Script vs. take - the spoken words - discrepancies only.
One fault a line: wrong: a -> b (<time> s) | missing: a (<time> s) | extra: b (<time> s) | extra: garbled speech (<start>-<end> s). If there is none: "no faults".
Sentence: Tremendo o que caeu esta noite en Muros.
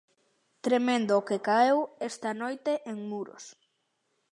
no faults